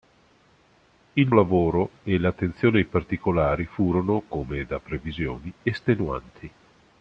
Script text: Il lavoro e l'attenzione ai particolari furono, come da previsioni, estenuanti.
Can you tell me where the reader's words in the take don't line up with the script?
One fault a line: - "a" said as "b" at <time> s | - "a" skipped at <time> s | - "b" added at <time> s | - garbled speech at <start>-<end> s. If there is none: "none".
none